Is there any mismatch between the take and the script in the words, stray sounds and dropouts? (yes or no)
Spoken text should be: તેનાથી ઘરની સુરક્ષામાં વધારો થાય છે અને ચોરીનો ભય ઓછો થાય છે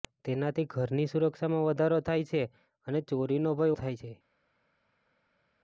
yes